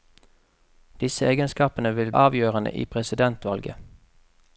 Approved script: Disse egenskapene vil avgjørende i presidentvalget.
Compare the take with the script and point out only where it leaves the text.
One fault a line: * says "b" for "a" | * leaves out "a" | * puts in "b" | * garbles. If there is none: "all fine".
all fine